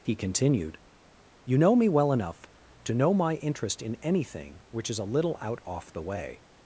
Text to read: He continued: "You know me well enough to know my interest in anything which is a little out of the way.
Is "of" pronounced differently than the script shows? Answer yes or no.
yes